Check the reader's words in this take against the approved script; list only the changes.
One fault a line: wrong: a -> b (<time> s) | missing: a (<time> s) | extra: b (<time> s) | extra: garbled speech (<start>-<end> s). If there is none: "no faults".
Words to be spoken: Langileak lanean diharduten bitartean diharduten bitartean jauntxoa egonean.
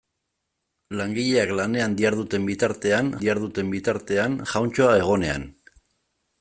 no faults